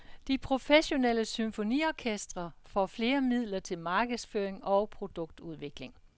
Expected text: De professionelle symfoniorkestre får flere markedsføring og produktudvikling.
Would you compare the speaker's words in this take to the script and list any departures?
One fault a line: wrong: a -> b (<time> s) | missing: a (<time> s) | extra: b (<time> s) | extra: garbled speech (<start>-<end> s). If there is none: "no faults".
extra: midler til (3.2 s)